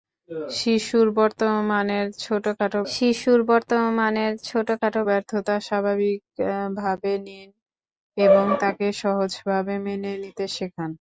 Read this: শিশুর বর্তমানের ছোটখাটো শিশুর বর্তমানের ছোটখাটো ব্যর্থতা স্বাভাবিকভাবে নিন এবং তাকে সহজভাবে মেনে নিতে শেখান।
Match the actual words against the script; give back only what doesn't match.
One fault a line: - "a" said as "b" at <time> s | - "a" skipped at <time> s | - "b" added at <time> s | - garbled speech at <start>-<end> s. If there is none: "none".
none